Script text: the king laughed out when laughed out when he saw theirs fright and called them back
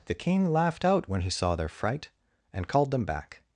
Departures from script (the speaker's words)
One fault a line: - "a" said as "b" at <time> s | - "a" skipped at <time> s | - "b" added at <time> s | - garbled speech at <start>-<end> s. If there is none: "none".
- "laughed out when" skipped at 1.2 s
- "theirs" said as "their" at 1.6 s